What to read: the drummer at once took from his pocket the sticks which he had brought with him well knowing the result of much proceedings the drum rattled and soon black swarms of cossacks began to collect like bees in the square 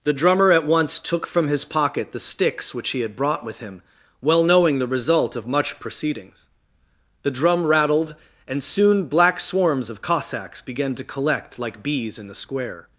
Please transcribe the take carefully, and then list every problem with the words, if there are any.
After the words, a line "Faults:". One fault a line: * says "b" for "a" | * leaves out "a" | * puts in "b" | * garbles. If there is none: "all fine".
the drummer at once took from his pocket the sticks which he had brought with him well knowing the result of much proceedings the drum rattled and soon black swarms of cossacks began to collect like bees in the square
Faults:
all fine